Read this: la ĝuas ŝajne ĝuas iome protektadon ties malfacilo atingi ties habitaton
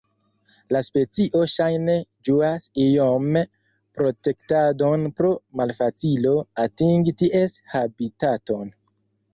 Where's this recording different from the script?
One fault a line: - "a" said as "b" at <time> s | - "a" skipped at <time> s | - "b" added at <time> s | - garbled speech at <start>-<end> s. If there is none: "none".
- "ĝuas" said as "specio" at 0.8 s
- "ties" said as "pro" at 5.2 s